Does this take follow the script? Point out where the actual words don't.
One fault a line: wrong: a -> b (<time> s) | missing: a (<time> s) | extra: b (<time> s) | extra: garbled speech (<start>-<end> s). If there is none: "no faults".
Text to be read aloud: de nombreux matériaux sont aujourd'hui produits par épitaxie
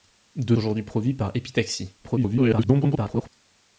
missing: nombreux matériaux sont (0.6 s)
extra: garbled speech (2.0-3.3 s)